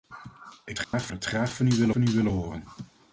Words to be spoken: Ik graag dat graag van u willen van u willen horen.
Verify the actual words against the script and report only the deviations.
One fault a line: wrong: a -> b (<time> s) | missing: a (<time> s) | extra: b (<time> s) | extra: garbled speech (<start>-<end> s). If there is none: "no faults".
no faults